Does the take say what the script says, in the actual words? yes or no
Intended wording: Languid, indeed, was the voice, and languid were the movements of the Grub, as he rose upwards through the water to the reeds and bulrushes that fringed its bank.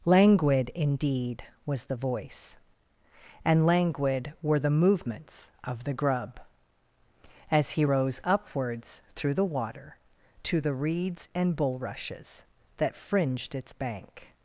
yes